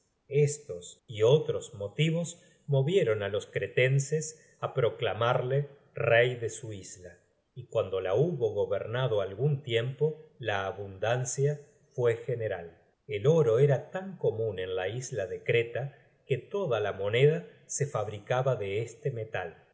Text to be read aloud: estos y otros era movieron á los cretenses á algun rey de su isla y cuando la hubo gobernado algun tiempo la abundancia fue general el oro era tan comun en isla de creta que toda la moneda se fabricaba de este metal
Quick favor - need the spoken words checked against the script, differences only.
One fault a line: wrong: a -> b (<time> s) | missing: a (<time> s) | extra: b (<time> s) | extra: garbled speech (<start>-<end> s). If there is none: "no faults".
wrong: era -> motivos (1.7 s)
wrong: algun -> proclamarle (4.7 s)
extra: la (14.8 s)